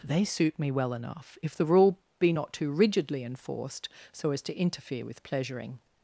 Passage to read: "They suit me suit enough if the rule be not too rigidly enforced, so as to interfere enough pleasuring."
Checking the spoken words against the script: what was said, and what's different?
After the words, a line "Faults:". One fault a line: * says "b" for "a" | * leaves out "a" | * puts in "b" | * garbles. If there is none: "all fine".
"They suit me well enough if the rule be not too rigidly enforced, so as to interfere with pleasuring."
Faults:
* says "well" for "suit"
* says "with" for "enough"